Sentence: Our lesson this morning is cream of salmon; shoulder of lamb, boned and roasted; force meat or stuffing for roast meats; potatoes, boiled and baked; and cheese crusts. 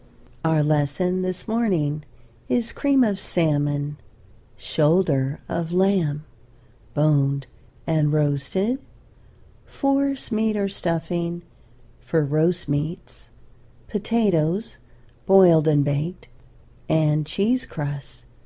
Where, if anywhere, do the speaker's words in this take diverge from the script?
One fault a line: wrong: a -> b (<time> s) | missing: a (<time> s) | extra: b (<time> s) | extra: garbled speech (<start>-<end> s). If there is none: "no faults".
no faults